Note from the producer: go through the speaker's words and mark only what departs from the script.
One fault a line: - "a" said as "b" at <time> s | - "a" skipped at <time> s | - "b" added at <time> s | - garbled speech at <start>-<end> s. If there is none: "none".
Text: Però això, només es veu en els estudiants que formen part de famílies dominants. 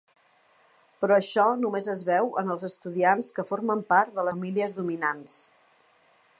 none